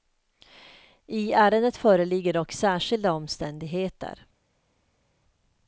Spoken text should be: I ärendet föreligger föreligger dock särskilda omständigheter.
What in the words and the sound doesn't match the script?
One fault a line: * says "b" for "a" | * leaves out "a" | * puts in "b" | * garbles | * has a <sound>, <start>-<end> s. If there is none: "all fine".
* leaves out "föreligger"